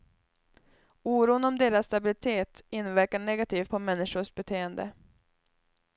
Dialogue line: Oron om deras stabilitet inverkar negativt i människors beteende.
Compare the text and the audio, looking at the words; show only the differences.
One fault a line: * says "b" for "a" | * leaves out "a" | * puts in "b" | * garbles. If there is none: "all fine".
* says "på" for "i"